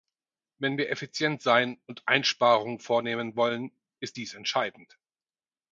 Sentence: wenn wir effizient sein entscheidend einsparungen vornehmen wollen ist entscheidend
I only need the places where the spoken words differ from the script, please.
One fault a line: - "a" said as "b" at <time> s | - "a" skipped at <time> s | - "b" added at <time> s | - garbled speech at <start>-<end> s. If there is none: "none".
- "entscheidend" said as "und" at 1.9 s
- "dies" added at 4.1 s